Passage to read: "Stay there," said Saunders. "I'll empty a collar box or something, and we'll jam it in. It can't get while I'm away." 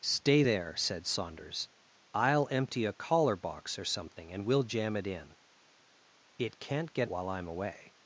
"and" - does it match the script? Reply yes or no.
yes